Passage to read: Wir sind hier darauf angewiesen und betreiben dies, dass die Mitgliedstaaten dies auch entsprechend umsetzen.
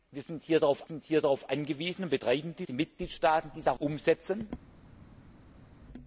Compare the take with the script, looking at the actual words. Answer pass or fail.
fail